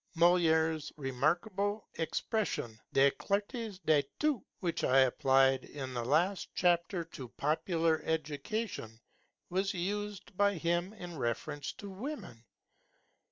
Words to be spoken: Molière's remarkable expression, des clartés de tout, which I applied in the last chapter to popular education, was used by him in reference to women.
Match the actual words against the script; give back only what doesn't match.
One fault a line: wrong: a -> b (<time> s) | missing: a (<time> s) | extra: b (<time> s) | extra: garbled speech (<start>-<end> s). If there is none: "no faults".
no faults